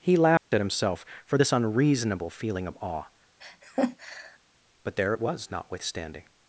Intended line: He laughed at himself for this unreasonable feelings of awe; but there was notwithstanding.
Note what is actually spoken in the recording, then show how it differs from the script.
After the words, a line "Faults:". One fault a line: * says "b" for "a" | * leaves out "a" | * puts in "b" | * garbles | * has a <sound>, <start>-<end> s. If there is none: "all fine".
He laughed at himself for this unreasonable feeling of awe; but there it was notwithstanding.
Faults:
* has a dropout, 0.4-0.5 s
* says "feeling" for "feelings"
* has a laugh, 3.4-4.4 s
* puts in "it"